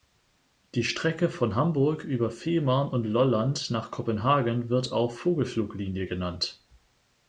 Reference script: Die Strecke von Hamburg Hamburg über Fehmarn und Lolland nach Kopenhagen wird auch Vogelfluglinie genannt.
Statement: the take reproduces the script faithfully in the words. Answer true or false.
false